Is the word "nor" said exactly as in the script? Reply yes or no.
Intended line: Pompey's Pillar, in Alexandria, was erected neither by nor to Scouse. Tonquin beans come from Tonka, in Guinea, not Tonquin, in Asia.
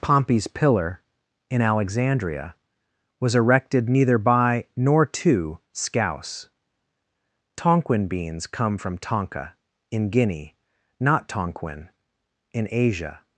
yes